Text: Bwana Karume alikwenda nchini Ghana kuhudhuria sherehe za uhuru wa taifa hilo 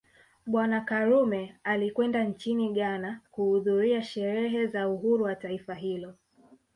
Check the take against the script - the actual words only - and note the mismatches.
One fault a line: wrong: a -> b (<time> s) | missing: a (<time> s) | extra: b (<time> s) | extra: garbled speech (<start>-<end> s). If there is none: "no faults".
no faults